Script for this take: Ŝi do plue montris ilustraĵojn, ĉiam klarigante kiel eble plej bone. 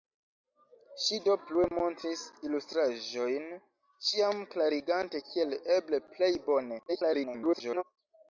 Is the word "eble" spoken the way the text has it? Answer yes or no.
yes